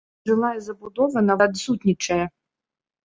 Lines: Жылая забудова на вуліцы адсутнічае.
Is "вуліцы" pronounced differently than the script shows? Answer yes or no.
yes